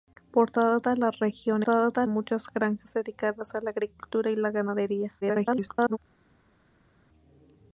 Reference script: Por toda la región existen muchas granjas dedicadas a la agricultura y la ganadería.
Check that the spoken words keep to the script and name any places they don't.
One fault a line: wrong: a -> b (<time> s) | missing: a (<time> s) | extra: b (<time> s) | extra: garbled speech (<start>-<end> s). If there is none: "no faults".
wrong: existen -> toda (1.6 s)
extra: garbled speech (5.2-6.0 s)